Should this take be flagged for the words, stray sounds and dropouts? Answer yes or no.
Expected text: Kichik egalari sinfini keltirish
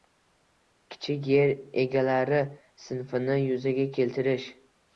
yes